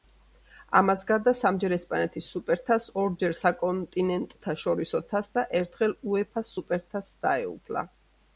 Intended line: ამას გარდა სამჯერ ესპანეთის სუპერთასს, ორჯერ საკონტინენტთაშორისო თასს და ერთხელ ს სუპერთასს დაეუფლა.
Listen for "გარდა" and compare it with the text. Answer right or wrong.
right